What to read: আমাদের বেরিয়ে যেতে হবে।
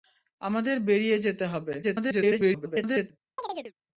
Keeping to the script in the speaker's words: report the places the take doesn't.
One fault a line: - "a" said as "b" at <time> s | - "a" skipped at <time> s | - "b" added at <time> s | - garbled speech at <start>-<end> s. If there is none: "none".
- garbled speech at 1.8-3.1 s